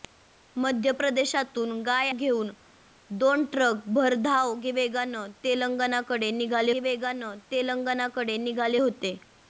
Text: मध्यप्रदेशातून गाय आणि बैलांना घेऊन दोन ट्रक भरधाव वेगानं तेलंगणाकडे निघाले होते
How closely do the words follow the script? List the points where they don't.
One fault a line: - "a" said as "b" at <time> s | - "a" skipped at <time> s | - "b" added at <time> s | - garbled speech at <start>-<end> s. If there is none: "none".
- "आणि बैलांना" skipped at 2.1 s
- "वेगानं तेलंगणाकडे निघाले" added at 6.8 s